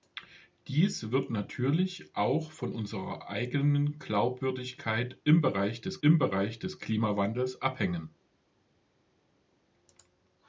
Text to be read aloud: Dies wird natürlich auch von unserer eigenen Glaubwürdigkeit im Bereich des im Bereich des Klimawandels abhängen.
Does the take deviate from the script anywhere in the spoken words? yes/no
no